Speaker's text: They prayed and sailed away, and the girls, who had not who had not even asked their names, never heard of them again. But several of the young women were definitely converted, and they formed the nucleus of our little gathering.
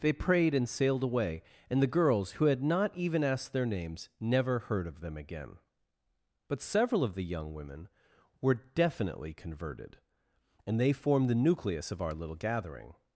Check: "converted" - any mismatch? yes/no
no